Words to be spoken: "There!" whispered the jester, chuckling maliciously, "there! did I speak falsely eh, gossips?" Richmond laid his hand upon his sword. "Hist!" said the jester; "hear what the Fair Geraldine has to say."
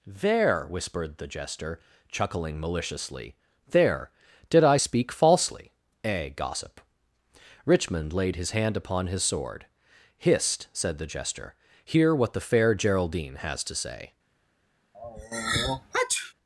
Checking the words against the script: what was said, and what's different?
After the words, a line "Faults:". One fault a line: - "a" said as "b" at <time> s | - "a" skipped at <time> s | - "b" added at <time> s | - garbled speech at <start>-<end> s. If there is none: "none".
"There!" whispered the jester, chuckling maliciously, "there! did I speak falsely eh, gossip?" Richmond laid his hand upon his sword. "Hist!" said the jester; "hear what the Fair Geraldine has to say."
Faults:
- "gossips" said as "gossip" at 6.3 s